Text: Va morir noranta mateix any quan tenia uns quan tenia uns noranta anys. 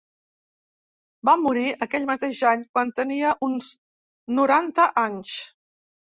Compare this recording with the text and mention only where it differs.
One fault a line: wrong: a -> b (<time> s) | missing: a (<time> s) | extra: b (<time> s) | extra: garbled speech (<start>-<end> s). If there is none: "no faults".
wrong: noranta -> aquell (1.9 s)
missing: quan tenia uns (3.7 s)